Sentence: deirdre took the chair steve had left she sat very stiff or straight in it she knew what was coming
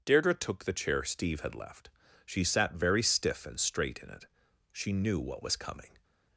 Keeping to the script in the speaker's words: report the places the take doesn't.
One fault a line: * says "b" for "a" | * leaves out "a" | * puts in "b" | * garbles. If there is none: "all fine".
* says "and" for "or"